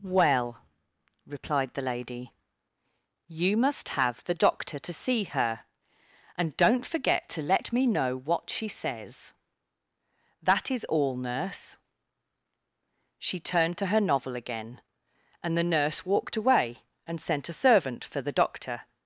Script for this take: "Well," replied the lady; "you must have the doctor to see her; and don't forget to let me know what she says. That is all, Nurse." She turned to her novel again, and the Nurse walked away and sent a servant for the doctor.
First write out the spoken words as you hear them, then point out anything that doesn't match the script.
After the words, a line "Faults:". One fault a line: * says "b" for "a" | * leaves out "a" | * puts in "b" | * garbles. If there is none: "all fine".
"Well," replied the lady; "you must have the doctor to see her; and don't forget to let me know what she says. That is all, Nurse." She turned to her novel again, and the Nurse walked away and sent a servant for the doctor.
Faults:
all fine